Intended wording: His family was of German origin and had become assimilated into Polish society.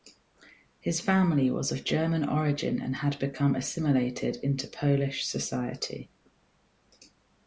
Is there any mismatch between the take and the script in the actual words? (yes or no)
no